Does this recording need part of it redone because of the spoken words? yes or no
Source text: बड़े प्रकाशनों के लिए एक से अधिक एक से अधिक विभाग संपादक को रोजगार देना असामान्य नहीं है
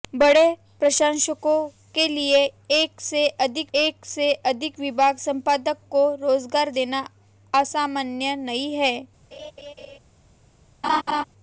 no